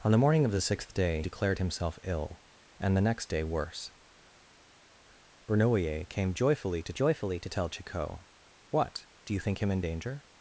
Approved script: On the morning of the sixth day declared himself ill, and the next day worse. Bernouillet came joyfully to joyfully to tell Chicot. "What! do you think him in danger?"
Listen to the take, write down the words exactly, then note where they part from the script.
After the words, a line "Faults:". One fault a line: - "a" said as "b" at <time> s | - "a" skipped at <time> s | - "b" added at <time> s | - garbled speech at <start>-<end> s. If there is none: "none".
On the morning of the sixth day declared himself ill, and the next day worse. Bernouillet came joyfully to joyfully to tell Chicot. "What! do you think him in danger?"
Faults:
none